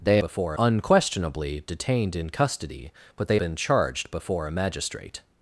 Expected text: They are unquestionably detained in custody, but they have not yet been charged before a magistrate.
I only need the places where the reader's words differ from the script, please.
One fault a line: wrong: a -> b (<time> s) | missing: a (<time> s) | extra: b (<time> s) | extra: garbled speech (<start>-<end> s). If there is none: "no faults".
wrong: are -> before (0.2 s)
missing: have not yet (3.4 s)